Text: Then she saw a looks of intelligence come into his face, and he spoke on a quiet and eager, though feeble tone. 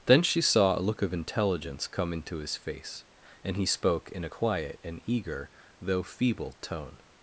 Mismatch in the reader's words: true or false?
true